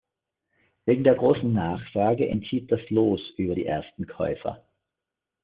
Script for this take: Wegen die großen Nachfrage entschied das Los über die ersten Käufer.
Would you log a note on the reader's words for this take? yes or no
yes